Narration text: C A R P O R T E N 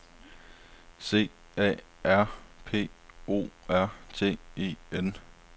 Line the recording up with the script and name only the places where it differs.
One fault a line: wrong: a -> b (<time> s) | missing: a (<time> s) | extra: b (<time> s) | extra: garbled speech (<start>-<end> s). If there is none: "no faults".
no faults